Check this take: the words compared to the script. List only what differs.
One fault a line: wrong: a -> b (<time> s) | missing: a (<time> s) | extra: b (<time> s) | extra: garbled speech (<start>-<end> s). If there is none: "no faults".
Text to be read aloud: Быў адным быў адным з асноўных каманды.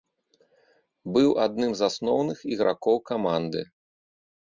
missing: быў адным (1.7 s)
extra: ігракоў (2.5 s)